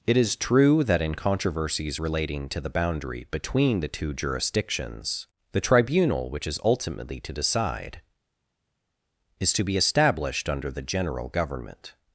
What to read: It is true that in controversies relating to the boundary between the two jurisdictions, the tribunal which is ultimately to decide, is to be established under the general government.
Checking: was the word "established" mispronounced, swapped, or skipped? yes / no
no